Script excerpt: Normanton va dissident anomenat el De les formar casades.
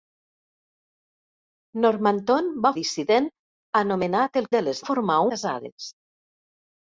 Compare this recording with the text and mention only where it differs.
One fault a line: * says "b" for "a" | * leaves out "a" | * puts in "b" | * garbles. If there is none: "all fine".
all fine